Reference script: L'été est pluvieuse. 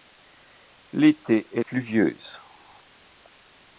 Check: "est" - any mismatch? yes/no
no